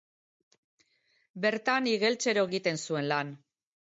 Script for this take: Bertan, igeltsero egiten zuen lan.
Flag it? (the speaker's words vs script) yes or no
no